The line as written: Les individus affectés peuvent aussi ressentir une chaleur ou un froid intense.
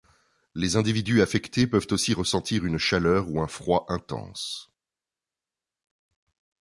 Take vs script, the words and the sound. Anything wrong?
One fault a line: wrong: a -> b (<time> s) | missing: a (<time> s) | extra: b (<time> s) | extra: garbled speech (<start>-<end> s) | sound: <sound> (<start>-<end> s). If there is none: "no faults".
no faults